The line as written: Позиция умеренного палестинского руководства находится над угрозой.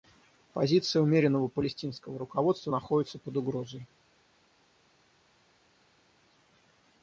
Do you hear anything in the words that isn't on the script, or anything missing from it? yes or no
yes